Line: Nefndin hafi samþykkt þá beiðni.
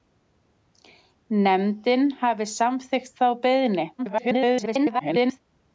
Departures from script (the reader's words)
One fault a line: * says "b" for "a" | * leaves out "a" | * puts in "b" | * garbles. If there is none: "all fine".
* garbles